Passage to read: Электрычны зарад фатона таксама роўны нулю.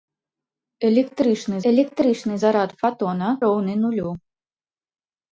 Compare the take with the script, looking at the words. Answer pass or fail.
fail